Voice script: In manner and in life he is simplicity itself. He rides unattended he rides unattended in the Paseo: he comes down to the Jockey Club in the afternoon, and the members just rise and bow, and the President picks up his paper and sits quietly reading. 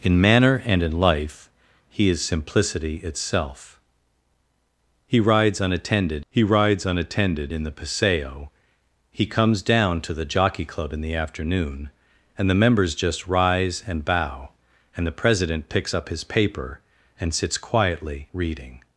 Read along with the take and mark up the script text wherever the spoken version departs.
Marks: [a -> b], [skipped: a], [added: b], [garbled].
In manner and in life he is simplicity itself. He rides unattended he rides unattended in the Paseo: he comes down to the Jockey Club in the afternoon, and the members just rise and bow, and the President picks up his paper and sits quietly reading.